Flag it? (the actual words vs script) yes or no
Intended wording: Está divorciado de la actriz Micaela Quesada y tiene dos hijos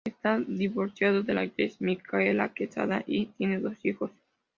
no